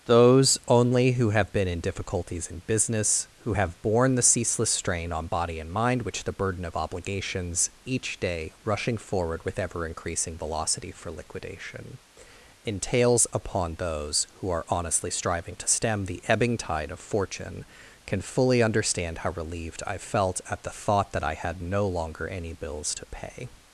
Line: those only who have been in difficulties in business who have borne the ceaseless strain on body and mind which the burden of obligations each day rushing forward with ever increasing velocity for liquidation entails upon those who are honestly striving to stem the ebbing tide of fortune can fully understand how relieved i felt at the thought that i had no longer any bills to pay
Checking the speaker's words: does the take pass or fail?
pass